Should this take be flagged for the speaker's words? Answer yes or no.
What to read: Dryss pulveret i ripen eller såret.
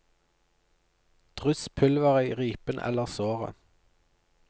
no